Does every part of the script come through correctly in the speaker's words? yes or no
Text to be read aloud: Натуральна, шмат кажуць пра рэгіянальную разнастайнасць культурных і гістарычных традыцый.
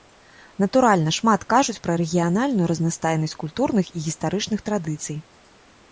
yes